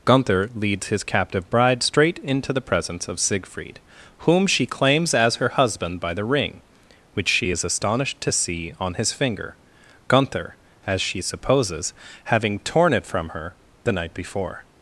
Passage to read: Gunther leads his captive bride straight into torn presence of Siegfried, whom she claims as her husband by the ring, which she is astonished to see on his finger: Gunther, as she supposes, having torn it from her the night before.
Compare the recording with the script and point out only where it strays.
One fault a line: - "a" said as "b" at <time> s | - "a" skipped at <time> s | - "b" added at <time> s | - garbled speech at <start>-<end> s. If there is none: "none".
- "torn" said as "the" at 2.5 s